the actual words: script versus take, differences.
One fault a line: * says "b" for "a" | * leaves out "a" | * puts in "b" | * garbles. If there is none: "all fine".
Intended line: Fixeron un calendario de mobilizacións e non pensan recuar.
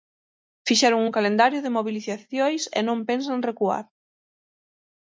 all fine